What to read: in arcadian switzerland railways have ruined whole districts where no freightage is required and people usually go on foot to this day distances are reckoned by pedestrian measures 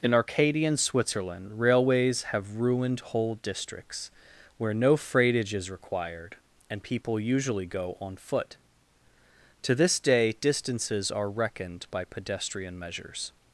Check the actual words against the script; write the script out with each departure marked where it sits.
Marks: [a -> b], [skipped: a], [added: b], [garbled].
in arcadian switzerland railways have ruined whole districts where no freightage is required and people usually go on foot to this day distances are reckoned by pedestrian measures